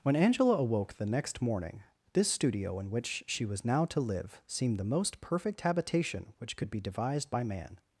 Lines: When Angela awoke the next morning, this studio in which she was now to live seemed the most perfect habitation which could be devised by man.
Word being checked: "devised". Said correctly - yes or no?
yes